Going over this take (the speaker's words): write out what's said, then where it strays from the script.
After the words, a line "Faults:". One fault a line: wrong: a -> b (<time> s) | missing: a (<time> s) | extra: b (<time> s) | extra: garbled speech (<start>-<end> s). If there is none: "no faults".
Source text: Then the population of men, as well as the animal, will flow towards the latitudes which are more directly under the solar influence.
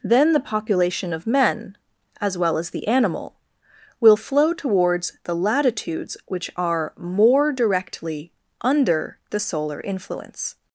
Then the population of men, as well as the animal, will flow towards the latitudes which are more directly under the solar influence.
Faults:
no faults